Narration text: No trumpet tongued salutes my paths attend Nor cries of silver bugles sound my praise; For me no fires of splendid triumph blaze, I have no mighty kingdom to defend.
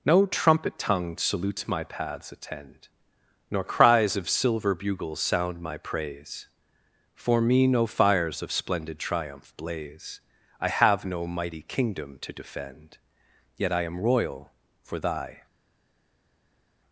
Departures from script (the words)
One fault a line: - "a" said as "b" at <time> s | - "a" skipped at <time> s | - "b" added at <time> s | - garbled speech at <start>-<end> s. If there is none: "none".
- "Yet I am royal for thy" added at 13.6 s